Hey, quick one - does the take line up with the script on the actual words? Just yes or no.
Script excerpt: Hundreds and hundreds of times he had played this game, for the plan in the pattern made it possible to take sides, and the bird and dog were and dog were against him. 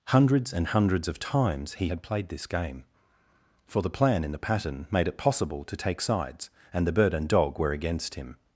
no